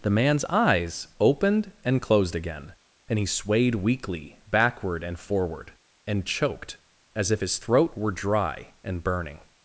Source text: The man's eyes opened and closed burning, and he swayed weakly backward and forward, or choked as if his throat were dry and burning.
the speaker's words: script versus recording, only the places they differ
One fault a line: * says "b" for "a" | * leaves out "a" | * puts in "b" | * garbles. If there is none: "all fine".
* says "again" for "burning"
* says "and" for "or"